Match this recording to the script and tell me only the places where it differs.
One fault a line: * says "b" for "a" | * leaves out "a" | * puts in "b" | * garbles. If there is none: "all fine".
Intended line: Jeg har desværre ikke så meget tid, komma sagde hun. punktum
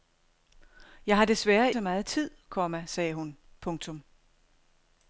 * leaves out "ikke"